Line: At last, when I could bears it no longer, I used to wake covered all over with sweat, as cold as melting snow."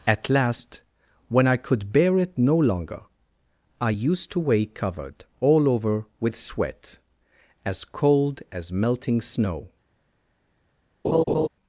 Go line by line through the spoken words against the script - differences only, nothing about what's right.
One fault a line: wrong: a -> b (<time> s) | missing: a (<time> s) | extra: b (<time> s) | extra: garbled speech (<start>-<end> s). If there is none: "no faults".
wrong: bears -> bear (1.9 s)